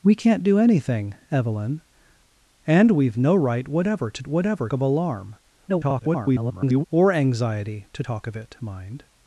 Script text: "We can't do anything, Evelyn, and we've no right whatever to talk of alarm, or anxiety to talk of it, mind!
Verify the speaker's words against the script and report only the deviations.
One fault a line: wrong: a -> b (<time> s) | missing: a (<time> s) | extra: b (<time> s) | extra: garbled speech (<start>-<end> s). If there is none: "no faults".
wrong: talk -> whatever (4.3 s)
extra: garbled speech (5.7-6.8 s)